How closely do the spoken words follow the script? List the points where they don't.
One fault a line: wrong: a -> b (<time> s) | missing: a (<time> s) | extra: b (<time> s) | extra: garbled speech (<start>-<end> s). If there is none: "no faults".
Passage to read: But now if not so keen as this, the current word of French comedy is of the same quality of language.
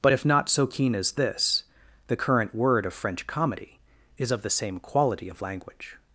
missing: now (0.1 s)